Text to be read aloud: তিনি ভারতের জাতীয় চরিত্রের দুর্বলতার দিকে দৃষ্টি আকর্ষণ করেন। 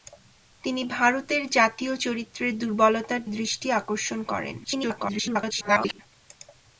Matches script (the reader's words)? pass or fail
fail